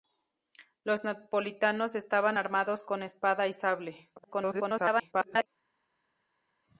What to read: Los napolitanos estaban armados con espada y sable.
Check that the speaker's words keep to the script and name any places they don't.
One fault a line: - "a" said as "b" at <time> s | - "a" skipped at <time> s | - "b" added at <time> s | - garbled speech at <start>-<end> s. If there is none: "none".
- garbled speech at 4.2-5.5 s